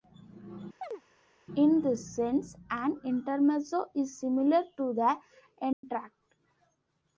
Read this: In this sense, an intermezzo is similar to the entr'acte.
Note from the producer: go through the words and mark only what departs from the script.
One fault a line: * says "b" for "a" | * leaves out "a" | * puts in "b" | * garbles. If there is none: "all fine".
all fine